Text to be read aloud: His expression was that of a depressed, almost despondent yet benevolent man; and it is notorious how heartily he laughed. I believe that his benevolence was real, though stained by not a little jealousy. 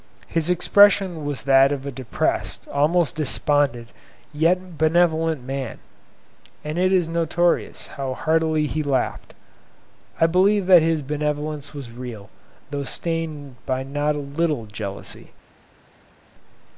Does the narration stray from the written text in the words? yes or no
no